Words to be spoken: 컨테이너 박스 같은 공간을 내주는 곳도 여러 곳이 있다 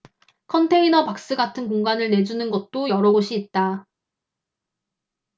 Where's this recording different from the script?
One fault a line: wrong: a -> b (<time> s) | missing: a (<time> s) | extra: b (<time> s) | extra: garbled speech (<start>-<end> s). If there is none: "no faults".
no faults